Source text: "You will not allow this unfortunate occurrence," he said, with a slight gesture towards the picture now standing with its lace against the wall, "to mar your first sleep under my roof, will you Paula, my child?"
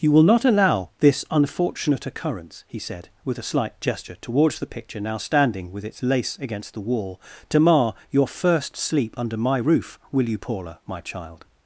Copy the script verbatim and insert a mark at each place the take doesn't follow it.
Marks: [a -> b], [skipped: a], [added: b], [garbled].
"You will not allow this unfortunate occurrence," he said, with a slight gesture towards the picture now standing with its lace against the wall, "to mar your first sleep under my roof, will you Paula, my child?"